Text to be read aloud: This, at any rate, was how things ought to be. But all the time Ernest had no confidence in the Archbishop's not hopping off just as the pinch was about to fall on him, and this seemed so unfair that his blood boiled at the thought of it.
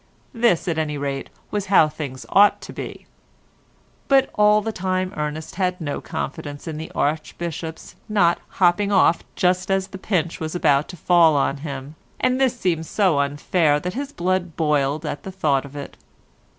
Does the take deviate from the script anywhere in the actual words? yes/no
no